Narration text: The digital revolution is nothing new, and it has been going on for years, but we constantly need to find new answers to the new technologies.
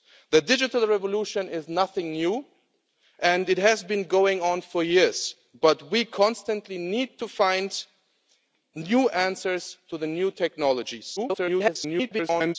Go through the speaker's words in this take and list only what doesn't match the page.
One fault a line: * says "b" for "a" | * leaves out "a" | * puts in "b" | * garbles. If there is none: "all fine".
* garbles